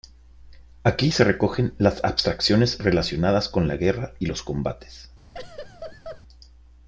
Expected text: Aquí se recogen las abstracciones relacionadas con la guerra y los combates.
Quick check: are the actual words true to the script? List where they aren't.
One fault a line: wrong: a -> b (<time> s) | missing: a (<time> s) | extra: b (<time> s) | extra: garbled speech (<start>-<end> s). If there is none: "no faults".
no faults